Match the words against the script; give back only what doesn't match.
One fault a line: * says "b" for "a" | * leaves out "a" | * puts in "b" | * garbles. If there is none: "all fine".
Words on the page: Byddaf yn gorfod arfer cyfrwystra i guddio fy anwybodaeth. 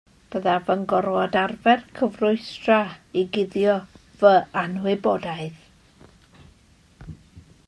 all fine